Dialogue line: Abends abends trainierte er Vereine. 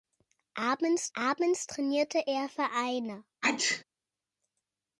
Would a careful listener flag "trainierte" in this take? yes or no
no